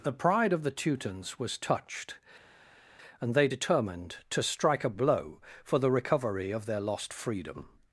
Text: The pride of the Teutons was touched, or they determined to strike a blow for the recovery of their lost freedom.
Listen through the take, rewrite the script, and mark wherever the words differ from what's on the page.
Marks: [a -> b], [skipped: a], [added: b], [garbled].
The pride of the Teutons was touched, [or -> and] they determined to strike a blow for the recovery of their lost freedom.